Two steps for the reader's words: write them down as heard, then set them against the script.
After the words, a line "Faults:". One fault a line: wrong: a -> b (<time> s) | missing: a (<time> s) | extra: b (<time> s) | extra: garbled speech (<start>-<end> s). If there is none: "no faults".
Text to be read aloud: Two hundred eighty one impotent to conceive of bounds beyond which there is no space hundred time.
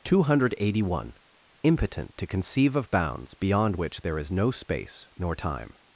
Two hundred eighty one impotent to conceive of bounds beyond which there is no space nor time.
Faults:
wrong: hundred -> nor (5.2 s)